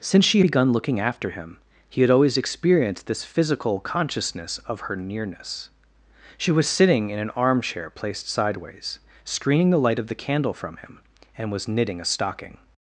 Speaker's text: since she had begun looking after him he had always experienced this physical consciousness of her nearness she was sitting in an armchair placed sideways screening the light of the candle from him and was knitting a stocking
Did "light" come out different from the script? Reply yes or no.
no